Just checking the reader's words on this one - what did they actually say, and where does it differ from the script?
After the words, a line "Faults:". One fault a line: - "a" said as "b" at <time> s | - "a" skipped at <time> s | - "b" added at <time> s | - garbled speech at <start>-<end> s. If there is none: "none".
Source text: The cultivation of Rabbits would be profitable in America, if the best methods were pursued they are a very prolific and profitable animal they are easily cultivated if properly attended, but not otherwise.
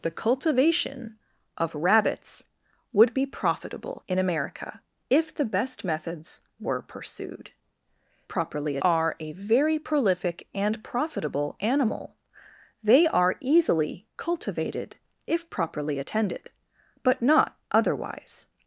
The cultivation of Rabbits would be profitable in America, if the best methods were pursued properly are a very prolific and profitable animal they are easily cultivated if properly attended, but not otherwise.
Faults:
- "they" said as "properly" at 8.3 s